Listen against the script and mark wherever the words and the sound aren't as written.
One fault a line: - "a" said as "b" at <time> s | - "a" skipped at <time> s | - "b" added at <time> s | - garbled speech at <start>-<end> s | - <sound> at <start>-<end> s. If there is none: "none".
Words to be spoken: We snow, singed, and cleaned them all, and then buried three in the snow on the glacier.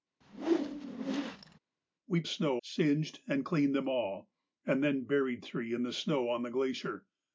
- whoosh at 0.2-1.6 s